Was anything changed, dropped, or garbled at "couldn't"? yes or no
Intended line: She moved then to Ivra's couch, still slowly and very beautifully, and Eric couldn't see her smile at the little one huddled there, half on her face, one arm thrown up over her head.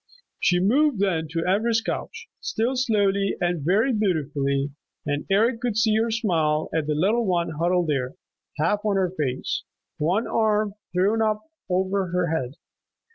yes